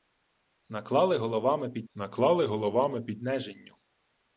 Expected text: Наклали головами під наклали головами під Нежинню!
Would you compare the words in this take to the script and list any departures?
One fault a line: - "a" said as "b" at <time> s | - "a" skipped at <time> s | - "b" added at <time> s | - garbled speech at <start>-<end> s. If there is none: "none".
none